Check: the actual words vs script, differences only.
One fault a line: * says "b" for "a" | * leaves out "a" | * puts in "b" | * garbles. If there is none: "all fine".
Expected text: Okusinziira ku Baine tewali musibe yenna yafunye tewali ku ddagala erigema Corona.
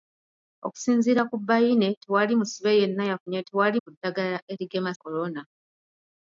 all fine